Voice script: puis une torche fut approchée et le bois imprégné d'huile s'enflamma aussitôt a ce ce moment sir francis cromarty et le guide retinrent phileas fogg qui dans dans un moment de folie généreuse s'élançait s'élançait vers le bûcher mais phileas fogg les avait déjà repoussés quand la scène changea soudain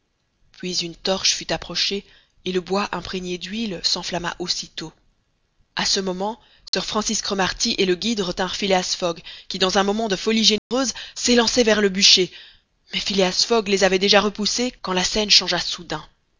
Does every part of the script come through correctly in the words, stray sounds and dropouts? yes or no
no